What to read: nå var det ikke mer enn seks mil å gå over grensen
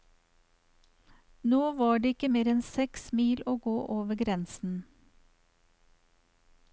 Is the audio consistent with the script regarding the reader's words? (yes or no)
yes